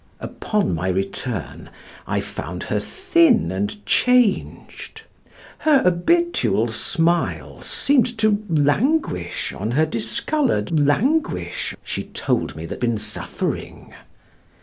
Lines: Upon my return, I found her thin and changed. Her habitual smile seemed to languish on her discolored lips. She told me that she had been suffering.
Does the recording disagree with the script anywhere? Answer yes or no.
yes